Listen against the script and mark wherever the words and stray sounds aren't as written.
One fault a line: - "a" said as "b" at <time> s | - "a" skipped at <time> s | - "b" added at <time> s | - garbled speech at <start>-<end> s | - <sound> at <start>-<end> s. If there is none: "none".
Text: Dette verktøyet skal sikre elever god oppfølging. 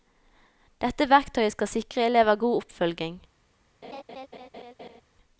- laugh at 3.8-5.0 s